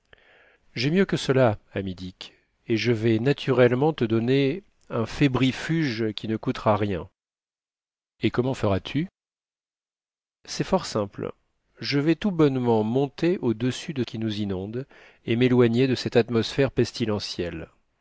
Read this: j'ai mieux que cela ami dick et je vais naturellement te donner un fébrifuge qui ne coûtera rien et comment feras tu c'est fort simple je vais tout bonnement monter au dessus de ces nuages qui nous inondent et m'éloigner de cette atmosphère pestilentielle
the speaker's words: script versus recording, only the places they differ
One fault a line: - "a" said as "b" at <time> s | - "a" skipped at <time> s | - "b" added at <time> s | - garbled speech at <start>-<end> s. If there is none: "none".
- "ces nuages" skipped at 14.0 s